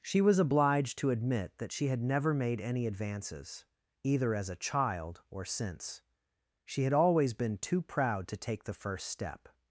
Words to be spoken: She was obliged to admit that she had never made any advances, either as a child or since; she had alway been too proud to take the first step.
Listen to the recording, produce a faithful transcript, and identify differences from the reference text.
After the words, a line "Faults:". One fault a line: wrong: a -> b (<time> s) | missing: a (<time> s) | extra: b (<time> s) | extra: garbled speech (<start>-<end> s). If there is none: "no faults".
She was obliged to admit that she had never made any advances, either as a child or since; she had always been too proud to take the first step.
Faults:
wrong: alway -> always (6.9 s)